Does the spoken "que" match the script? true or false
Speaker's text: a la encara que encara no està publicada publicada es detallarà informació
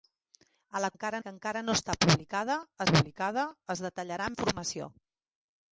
true